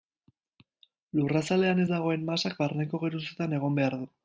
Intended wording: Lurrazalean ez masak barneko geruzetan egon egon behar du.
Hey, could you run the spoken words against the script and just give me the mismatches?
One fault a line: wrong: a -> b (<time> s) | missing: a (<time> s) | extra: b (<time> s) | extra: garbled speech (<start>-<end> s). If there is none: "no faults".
extra: dagoen (1.9 s)
missing: egon (3.8 s)